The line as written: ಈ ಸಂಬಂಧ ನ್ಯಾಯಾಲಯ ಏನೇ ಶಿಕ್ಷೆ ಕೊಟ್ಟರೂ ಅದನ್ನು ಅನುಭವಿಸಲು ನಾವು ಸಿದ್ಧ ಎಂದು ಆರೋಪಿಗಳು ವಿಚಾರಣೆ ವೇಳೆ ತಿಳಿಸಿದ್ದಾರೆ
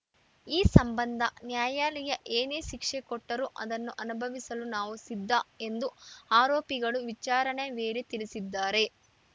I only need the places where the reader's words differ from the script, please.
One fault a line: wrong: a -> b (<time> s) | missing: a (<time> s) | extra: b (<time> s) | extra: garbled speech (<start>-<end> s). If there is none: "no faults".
no faults